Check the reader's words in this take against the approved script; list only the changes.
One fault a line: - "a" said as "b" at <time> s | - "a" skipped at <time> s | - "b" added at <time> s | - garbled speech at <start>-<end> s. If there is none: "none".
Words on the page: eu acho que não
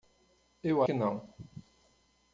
- "acho" skipped at 0.8 s